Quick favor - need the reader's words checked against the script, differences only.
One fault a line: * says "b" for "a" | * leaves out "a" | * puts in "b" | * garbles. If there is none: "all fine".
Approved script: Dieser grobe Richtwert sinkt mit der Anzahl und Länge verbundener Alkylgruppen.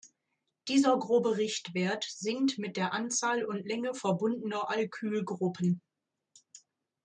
all fine